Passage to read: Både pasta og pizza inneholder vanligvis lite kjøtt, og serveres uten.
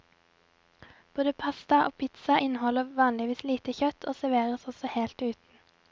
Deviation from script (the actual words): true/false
true